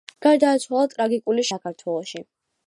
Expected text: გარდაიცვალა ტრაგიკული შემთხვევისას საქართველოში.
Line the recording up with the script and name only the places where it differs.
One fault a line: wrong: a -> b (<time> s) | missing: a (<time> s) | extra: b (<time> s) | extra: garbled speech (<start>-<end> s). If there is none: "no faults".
missing: შემთხვევისას (1.4 s)